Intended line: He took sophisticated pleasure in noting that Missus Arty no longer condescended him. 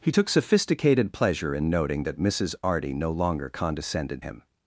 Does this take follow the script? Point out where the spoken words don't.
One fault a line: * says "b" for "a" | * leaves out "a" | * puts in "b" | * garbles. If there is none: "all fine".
all fine